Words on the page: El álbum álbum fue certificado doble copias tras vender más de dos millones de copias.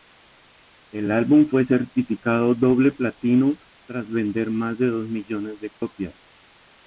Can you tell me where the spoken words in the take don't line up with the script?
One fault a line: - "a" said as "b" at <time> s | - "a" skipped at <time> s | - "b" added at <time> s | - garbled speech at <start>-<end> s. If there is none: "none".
- "álbum" skipped at 1.5 s
- "copias" said as "platino" at 2.9 s